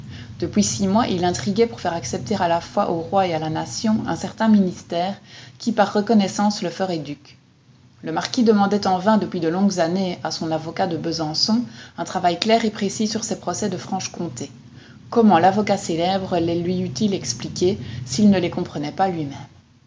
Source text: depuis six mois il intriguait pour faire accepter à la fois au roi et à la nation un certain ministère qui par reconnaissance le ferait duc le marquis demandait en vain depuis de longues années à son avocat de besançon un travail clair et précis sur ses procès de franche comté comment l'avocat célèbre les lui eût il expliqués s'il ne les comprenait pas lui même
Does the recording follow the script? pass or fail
pass